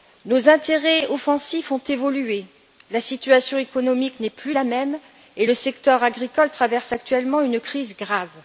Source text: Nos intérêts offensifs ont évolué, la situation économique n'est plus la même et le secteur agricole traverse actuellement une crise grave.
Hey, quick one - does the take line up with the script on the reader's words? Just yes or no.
yes